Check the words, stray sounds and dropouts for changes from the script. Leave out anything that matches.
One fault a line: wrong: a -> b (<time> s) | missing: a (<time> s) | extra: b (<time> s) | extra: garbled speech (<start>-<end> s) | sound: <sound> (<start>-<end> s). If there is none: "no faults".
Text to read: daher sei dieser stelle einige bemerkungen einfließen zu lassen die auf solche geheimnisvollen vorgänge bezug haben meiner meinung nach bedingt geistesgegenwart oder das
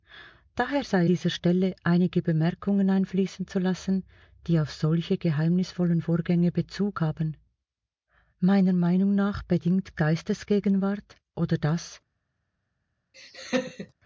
sound: laugh (13.1-13.9 s)